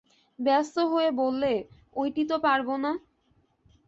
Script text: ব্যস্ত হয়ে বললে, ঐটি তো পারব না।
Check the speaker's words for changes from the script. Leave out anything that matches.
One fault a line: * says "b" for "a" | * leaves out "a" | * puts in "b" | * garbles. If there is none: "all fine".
all fine